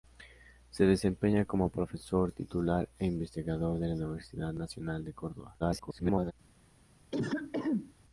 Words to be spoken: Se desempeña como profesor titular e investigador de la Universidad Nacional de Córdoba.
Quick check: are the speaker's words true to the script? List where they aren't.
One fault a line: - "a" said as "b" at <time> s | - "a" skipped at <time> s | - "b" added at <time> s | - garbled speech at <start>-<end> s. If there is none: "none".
- garbled speech at 5.6-6.3 s